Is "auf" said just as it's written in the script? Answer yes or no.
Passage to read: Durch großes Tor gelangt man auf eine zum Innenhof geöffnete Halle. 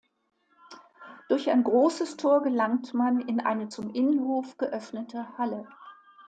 no